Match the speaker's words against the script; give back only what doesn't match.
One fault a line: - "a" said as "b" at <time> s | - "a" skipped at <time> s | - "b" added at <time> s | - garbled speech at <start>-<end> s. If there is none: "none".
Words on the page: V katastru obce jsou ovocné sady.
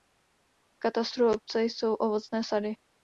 none